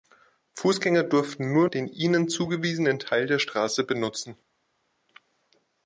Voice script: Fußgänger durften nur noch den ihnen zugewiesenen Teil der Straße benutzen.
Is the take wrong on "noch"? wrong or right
wrong